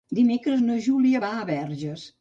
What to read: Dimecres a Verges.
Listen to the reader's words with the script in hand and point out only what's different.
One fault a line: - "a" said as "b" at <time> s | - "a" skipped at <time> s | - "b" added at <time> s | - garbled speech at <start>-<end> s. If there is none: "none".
- "na Júlia va" added at 0.6 s